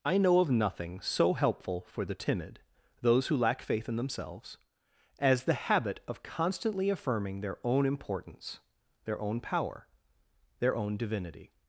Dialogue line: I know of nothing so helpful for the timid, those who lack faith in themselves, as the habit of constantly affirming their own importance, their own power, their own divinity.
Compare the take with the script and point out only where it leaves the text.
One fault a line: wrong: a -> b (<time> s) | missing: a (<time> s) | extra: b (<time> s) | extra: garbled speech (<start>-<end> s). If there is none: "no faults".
no faults